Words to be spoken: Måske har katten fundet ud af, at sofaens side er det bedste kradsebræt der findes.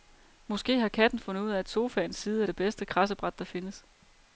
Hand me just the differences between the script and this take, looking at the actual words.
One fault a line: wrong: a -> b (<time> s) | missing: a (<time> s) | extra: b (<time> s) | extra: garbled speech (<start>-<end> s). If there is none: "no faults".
no faults